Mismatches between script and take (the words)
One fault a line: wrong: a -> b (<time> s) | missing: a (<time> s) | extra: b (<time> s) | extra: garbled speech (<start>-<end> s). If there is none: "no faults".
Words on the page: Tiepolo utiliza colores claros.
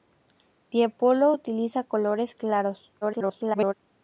extra: garbled speech (3.0-3.7 s)